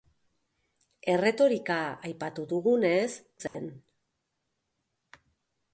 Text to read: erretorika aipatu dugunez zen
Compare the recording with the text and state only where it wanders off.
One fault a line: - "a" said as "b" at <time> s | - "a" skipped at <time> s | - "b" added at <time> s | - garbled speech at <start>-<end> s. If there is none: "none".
none